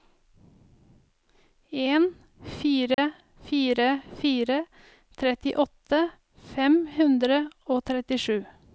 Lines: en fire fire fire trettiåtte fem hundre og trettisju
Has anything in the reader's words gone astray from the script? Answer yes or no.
no